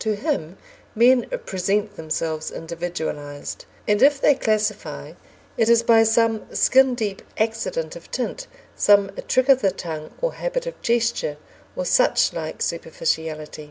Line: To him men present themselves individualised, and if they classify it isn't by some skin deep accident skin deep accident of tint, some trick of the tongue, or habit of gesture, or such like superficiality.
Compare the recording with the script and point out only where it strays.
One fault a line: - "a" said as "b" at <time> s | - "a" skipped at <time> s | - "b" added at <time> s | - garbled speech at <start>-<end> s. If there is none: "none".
- "isn't" said as "is" at 5.7 s
- "skin deep accident" skipped at 8.0 s